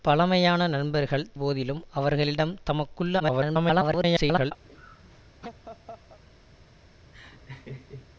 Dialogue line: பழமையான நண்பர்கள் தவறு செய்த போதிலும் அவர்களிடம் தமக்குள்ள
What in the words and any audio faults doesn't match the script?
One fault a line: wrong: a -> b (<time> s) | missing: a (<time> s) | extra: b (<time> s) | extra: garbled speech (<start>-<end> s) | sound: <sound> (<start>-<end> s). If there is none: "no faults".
missing: தவறு செய்த (1.3 s)
extra: garbled speech (3.2-4.5 s)
sound: laugh (4.7-6.2 s)
sound: laugh (7.1-8.1 s)